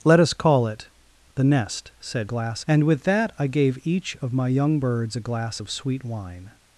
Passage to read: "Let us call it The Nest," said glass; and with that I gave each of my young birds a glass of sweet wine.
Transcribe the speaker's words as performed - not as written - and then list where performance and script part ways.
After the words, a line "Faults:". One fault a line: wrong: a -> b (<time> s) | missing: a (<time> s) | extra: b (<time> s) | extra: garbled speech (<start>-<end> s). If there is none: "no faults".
"Let us call it The Nest," said glass; and with that I gave each of my young birds a glass of sweet wine.
Faults:
no faults